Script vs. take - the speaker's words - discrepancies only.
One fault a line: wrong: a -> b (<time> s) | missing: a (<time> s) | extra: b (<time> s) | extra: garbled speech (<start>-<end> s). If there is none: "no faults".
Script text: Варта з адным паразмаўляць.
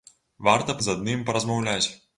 no faults